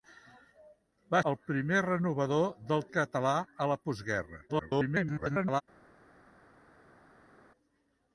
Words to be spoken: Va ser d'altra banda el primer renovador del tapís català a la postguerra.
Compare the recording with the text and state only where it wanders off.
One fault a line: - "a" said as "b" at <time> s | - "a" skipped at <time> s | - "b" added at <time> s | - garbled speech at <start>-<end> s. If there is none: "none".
- "ser d'altra banda" skipped at 1.2 s
- "tapís" skipped at 2.9 s
- garbled speech at 4.5-5.6 s